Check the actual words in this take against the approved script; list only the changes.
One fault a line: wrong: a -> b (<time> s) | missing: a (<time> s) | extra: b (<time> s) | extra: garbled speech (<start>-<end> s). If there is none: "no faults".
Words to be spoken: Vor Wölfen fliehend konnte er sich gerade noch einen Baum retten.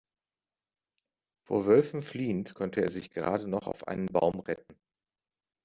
extra: auf (3.7 s)